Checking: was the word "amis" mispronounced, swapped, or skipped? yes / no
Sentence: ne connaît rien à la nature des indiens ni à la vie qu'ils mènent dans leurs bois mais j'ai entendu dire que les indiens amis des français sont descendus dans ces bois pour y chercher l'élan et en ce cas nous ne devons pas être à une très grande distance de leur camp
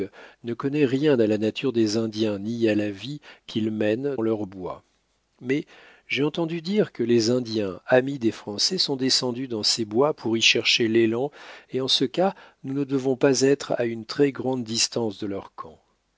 no